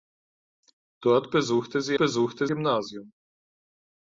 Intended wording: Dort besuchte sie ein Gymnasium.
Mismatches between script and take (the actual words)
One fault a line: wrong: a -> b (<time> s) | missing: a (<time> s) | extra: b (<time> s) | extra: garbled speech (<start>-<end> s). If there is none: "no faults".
wrong: ein -> besuchte (2.0 s)